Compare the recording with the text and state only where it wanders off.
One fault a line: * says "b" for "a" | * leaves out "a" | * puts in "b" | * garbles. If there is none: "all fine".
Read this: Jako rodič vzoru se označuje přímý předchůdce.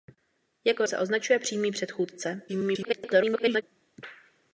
* leaves out "rodič vzoru"
* garbles